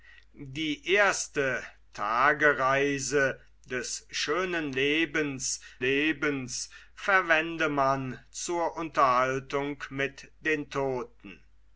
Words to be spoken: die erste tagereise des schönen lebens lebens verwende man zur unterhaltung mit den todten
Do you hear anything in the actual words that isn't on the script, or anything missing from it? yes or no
no